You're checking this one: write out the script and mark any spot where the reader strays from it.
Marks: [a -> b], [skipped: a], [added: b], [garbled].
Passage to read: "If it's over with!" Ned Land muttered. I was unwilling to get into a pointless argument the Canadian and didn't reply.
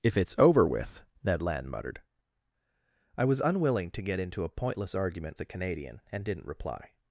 "If it's over with!" Ned Land muttered. I was unwilling to get into a pointless argument the Canadian and didn't reply.